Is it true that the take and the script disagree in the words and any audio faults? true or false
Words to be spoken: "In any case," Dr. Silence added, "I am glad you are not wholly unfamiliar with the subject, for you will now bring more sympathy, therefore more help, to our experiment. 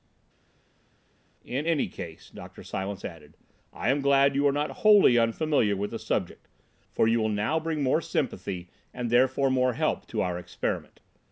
true